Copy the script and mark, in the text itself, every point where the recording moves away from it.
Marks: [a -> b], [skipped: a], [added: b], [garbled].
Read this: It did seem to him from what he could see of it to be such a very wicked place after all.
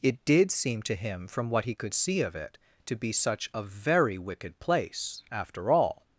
It did seem to him from what he could see of it to be such a very wicked place after all.